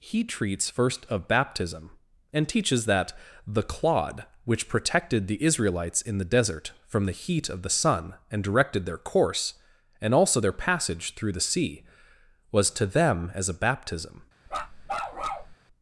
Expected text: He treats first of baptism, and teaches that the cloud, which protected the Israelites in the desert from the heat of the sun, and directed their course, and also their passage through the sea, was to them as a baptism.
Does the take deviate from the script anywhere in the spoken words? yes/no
yes